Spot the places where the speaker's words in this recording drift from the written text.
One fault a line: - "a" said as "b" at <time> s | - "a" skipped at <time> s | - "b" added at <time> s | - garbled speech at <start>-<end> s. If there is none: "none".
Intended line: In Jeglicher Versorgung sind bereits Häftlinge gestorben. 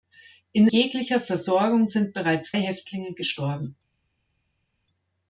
none